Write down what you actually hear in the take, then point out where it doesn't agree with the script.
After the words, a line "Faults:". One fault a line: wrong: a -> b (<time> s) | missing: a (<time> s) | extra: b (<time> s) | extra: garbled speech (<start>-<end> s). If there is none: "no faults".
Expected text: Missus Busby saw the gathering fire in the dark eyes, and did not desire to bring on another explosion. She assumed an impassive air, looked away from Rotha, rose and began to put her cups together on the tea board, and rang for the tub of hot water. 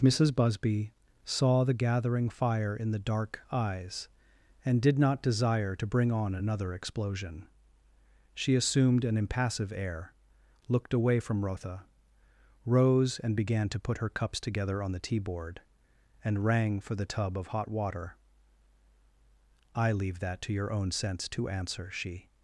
Missus Busby saw the gathering fire in the dark eyes, and did not desire to bring on another explosion. She assumed an impassive air, looked away from Rotha, rose and began to put her cups together on the tea board, and rang for the tub of hot water. "I leave that to your own sense to answer," she
Faults:
extra: I leave that to your own sense to answer she (19.8 s)